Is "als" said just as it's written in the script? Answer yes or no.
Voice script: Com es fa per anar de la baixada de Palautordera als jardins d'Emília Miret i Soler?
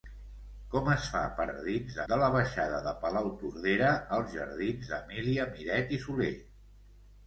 yes